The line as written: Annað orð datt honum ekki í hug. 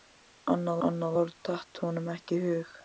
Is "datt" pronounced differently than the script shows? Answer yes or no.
no